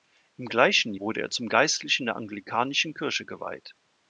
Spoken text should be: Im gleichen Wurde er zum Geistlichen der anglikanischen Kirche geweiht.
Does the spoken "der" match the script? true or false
true